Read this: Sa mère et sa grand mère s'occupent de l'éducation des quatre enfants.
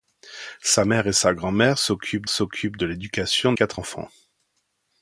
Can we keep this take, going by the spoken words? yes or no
no